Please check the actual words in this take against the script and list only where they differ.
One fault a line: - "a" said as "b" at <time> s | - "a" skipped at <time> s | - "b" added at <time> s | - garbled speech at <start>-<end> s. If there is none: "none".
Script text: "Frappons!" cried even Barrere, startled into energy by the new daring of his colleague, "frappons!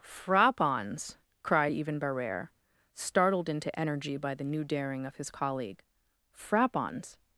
none